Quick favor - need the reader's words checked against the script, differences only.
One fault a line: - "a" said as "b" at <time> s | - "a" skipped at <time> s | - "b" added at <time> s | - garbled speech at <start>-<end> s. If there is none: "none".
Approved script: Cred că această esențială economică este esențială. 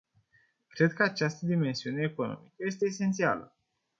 - "esențială" said as "dimensiune" at 1.4 s